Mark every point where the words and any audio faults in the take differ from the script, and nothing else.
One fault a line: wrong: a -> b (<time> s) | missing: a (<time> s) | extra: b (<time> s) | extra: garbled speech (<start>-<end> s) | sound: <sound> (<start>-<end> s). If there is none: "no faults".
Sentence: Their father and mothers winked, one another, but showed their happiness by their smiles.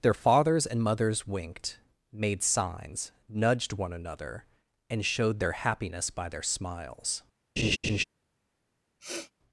wrong: father -> fathers (0.1 s)
extra: made signs nudged (2.1 s)
wrong: but -> and (4.9 s)
sound: laugh (7.6-8.0 s)
sound: sniff (9.0-9.3 s)